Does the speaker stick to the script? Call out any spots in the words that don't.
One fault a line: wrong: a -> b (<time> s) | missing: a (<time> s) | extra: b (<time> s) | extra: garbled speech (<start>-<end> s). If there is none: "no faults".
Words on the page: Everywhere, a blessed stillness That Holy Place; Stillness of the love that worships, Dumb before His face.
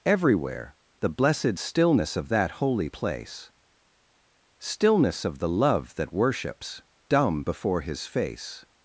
wrong: a -> the (1.0 s)
extra: Of (2.2 s)